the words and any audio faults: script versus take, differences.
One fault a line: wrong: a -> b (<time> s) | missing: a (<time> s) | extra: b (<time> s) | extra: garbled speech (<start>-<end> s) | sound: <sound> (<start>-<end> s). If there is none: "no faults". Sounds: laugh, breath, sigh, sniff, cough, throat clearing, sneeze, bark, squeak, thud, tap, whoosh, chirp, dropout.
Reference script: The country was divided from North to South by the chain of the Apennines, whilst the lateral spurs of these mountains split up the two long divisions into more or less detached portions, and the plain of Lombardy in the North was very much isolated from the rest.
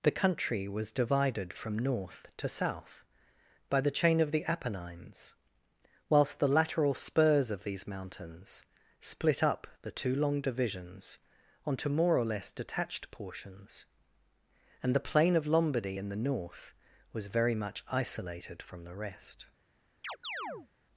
wrong: into -> onto (11.7 s)
sound: chirp (20.0-20.7 s)